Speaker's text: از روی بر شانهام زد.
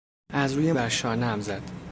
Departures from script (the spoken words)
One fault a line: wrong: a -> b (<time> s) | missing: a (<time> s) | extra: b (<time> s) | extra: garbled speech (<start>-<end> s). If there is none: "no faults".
no faults